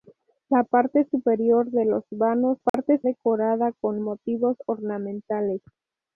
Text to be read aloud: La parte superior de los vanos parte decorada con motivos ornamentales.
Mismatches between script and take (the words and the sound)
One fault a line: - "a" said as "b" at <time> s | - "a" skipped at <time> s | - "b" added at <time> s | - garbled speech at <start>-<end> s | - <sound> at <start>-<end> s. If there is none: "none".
- dropout at 2.7-2.7 s